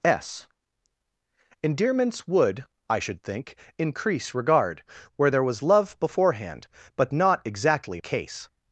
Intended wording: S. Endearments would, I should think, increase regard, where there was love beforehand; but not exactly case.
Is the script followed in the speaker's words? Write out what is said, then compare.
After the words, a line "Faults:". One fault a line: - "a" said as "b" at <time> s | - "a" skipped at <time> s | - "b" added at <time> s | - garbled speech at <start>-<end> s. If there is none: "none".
S. Endearments would, I should think, increase regard, where there was love beforehand; but not exactly case.
Faults:
none